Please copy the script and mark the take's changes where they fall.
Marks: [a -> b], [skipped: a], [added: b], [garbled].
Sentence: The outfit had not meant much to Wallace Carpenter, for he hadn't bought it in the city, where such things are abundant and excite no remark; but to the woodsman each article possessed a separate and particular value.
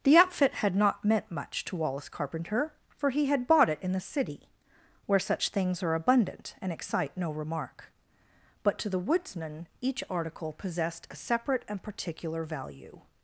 The outfit had not meant much to Wallace Carpenter, for he [hadn't -> had] bought it in the city, where such things are abundant and excite no remark; but to the woodsman each article possessed a separate and particular value.